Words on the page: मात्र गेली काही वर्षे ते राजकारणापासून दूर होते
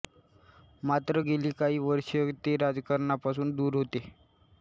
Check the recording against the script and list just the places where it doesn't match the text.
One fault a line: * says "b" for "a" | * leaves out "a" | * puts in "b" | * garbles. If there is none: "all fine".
all fine